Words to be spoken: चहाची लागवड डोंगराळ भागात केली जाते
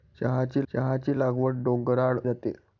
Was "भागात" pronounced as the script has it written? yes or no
no